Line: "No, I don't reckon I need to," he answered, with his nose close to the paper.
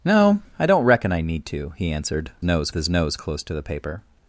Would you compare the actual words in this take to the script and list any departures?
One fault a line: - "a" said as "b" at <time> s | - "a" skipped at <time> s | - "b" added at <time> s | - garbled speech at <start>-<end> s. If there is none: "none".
- "with" said as "nose" at 2.4 s